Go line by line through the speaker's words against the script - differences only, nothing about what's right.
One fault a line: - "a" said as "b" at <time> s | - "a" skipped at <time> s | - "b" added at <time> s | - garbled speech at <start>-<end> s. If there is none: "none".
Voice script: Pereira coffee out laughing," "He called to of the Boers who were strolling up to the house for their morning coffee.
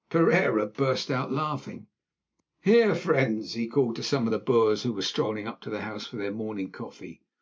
- "coffee" said as "burst" at 0.7 s
- "Here friends" added at 2.6 s
- "some" added at 4.0 s